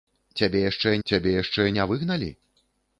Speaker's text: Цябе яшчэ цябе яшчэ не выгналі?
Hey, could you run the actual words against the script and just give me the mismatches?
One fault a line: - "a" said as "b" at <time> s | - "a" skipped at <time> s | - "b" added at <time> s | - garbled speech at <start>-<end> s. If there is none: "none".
none